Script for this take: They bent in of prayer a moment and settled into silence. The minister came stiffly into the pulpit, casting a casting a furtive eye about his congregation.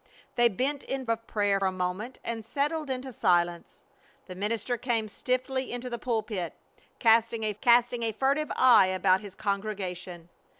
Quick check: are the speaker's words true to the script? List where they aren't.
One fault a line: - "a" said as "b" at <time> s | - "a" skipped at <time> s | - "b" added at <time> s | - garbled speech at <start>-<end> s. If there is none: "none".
none